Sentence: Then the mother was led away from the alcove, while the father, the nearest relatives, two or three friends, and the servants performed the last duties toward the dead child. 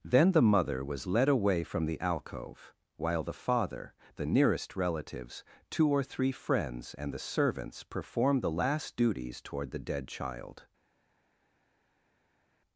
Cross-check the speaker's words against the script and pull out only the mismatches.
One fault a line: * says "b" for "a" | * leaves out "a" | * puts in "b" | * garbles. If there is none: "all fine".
all fine